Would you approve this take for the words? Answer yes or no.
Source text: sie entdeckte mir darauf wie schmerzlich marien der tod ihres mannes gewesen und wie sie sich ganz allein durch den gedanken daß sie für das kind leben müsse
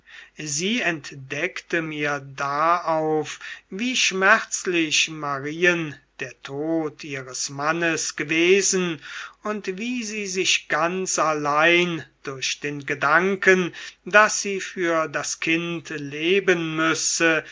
yes